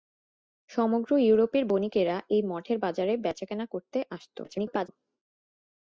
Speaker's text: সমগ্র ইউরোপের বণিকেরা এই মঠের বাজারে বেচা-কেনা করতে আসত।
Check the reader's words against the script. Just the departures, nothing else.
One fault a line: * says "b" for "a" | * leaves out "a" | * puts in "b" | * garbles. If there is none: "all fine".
* garbles